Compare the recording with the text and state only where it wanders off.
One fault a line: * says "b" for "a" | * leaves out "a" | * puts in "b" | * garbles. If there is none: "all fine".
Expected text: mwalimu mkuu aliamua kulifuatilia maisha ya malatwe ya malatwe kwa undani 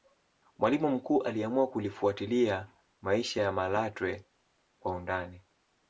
* leaves out "ya malatwe"